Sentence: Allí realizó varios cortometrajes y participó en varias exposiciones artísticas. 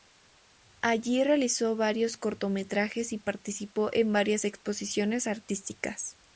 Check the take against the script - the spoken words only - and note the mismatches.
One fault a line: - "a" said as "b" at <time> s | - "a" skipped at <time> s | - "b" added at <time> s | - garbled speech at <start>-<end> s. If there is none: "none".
none